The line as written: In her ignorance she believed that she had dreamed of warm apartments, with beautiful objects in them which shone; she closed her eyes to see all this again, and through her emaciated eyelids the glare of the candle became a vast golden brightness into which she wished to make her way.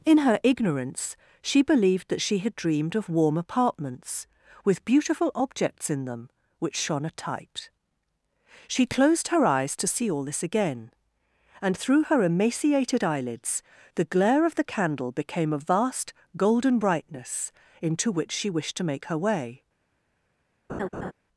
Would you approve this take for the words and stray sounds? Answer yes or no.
no